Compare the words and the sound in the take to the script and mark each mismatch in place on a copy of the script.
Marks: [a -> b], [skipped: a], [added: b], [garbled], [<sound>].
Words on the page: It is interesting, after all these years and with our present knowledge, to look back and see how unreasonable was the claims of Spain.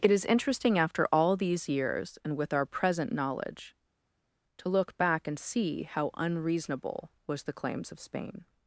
It is interesting, after all these years and with our present knowledge, to look back and see how unreasonable was the claims of Spain.